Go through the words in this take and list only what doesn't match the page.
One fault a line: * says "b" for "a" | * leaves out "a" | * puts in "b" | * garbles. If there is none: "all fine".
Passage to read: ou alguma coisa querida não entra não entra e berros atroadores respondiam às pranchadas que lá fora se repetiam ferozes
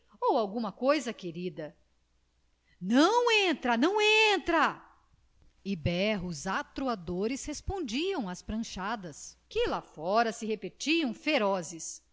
all fine